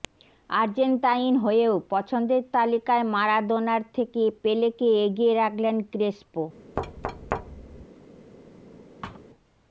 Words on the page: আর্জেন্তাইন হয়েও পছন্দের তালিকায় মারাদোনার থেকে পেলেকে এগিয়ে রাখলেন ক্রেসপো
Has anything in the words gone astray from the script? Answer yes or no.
no